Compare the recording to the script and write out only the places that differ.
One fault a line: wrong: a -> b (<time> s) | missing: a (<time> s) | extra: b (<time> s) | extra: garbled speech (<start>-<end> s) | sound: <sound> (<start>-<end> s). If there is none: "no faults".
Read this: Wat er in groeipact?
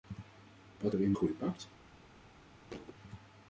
sound: thud (2.7-3.0 s)